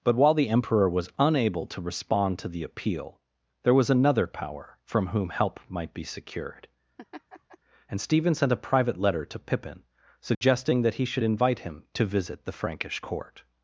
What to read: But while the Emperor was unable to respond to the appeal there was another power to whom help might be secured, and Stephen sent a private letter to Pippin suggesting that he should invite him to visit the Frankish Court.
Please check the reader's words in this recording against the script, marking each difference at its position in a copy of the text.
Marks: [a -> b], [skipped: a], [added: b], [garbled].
But while the Emperor was unable to respond to the appeal there was another power [to -> from] whom help might be secured, and Stephen sent a private letter to Pippin suggesting that he should invite him to visit the Frankish Court.